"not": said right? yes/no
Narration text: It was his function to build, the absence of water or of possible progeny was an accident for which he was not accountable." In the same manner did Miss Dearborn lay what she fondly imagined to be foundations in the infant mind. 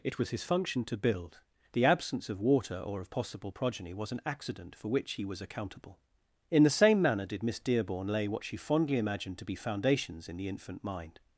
no